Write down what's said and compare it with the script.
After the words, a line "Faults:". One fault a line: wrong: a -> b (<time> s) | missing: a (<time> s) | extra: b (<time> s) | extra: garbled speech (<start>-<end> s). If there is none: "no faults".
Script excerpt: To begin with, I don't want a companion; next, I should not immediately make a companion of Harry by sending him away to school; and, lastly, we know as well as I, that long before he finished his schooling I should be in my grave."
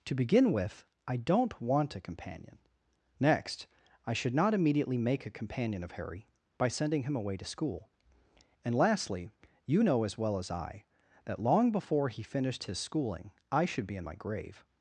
To begin with, I don't want a companion; next, I should not immediately make a companion of Harry by sending him away to school; and, lastly, you know as well as I, that long before he finished his schooling I should be in my grave."
Faults:
wrong: we -> you (9.7 s)